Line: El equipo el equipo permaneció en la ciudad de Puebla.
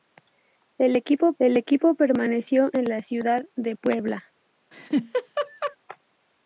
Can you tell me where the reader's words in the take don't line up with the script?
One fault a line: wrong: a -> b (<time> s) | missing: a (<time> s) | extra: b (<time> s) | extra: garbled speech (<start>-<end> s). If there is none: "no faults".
no faults